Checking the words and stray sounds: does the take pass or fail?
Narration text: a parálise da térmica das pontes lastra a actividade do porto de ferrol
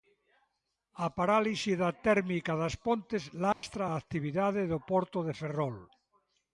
fail